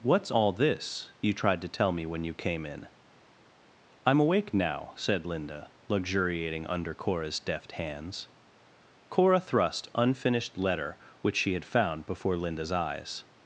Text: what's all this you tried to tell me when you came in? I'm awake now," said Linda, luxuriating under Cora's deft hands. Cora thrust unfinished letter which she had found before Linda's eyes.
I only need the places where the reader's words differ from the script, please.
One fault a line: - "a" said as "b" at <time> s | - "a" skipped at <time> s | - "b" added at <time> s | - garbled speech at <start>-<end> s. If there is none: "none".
none